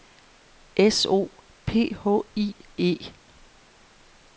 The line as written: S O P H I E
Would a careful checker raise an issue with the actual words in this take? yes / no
no